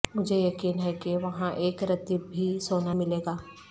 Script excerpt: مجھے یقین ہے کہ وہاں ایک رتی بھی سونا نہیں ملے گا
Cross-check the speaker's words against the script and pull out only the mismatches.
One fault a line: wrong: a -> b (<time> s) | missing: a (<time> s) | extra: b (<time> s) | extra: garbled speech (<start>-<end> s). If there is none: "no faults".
missing: نہیں (2.9 s)